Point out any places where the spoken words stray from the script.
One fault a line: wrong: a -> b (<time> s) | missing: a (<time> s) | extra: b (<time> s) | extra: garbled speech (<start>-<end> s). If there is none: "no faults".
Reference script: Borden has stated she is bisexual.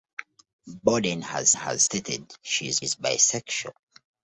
extra: has (1.5 s)
extra: is (2.8 s)